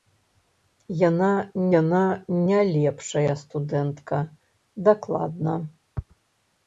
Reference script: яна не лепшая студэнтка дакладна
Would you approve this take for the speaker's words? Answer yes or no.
no